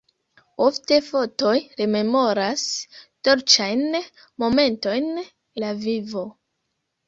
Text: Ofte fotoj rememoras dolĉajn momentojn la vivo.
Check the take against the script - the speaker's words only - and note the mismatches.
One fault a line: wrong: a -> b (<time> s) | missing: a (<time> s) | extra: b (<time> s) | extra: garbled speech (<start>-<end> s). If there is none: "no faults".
no faults